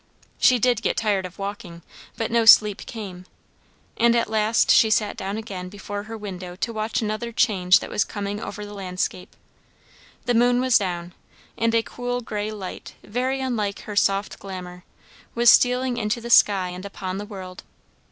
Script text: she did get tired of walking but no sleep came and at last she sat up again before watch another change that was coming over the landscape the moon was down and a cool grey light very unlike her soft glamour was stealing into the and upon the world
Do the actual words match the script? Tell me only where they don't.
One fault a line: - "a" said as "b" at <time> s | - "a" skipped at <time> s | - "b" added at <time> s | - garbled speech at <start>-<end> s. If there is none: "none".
- "up" said as "down" at 5.2 s
- "her window to" added at 6.0 s
- "sky" added at 16.3 s